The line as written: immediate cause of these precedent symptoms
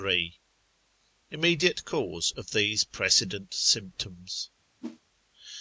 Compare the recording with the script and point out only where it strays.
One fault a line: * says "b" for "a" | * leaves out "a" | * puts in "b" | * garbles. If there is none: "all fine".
all fine